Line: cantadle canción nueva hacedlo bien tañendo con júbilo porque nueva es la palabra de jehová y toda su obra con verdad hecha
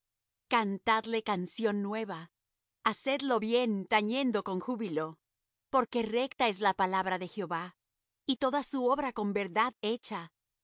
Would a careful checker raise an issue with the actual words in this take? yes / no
yes